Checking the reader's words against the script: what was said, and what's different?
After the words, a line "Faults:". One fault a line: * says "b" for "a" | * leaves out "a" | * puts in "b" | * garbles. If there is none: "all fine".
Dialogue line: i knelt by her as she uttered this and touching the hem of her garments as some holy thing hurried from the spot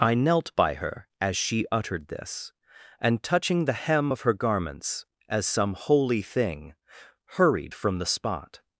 i knelt by her as she uttered this and touching the hem of her garments as some holy thing hurried from the spot
Faults:
all fine